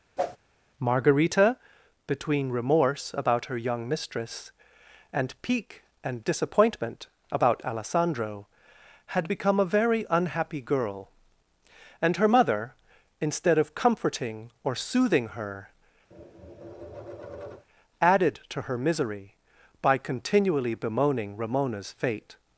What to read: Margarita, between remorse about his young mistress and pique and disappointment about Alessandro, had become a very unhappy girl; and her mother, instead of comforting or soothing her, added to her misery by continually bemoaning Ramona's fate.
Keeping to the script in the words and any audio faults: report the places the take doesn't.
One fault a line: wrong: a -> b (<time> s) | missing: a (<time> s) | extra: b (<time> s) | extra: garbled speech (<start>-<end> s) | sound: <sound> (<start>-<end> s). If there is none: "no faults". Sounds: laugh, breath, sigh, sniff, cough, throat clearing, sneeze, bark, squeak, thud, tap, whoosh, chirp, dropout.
sound: whoosh (0.2-0.4 s)
wrong: his -> her (3.5 s)
sound: tap (16.1-17.7 s)